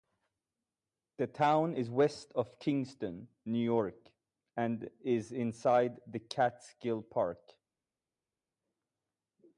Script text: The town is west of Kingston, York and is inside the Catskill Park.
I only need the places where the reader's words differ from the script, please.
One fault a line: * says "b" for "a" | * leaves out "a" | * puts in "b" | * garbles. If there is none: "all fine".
* puts in "New"